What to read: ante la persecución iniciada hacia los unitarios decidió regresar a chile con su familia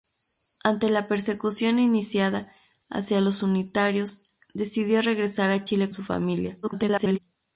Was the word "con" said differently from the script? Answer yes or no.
yes